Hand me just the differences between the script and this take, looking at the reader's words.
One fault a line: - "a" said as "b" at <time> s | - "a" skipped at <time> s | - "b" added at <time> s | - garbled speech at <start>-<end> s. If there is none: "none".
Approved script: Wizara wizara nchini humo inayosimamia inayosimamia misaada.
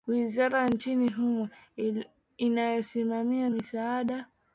- "wizara" skipped at 0.7 s
- "inayosimamia" skipped at 3.5 s